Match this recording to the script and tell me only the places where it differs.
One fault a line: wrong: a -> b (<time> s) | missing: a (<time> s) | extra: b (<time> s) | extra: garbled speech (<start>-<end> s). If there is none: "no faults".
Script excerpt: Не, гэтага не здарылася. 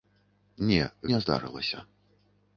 missing: гэтага (0.8 s)